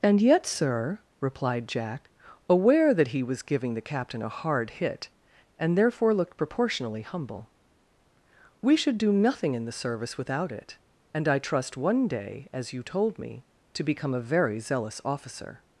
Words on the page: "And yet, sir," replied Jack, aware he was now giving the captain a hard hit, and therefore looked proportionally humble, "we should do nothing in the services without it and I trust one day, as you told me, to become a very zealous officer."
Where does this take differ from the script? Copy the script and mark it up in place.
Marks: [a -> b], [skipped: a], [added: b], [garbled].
"And yet, sir," replied Jack, aware [added: that] he was [skipped: now] giving the captain a hard hit, and therefore looked proportionally humble, "we should do nothing in the [services -> service] without it and I trust one day, as you told me, to become a very zealous officer."